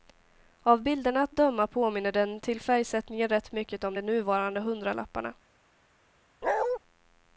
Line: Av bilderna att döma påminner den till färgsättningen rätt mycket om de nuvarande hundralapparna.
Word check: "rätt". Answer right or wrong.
right